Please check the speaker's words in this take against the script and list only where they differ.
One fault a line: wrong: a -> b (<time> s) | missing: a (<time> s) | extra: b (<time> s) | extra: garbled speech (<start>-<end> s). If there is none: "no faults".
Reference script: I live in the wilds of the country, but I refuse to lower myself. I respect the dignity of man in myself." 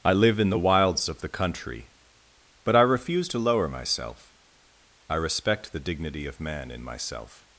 no faults